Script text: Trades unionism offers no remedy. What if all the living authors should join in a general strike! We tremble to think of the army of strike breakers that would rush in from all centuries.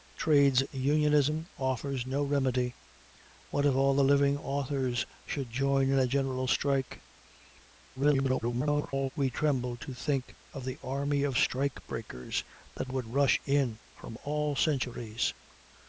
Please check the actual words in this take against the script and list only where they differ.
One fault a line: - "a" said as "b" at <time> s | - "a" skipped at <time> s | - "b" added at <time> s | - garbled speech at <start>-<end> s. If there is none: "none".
- garbled speech at 8.0-9.1 s